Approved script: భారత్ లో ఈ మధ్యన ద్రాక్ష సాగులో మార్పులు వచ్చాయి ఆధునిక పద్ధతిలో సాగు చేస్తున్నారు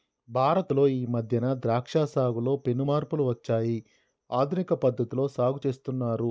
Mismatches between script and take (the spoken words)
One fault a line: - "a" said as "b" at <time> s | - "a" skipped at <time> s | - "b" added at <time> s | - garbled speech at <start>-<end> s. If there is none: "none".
- "పెను" added at 2.6 s